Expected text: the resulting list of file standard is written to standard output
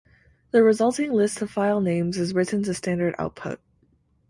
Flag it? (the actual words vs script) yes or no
yes